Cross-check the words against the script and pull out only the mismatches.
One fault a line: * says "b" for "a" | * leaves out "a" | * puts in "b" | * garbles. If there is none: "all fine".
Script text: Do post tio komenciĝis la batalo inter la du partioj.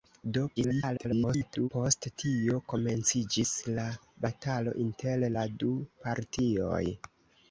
* garbles